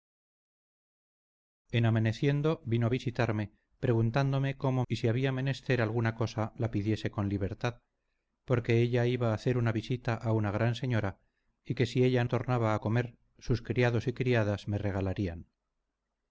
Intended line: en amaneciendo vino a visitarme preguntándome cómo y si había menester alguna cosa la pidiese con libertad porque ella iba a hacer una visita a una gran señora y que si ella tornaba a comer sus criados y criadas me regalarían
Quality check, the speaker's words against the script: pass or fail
pass